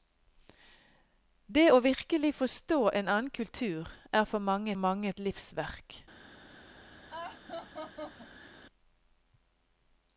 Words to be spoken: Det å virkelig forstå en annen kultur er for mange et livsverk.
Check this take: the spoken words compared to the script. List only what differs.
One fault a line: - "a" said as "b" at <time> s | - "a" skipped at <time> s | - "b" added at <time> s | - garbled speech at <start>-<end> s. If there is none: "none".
- "mange" added at 4.7 s